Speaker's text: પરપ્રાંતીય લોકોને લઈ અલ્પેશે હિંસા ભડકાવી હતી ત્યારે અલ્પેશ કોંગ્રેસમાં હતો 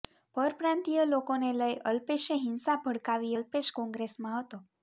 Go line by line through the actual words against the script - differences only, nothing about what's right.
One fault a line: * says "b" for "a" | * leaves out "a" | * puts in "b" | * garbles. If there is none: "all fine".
* leaves out "હતી ત્યારે"